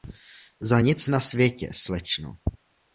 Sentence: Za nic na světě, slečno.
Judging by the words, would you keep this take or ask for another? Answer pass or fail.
pass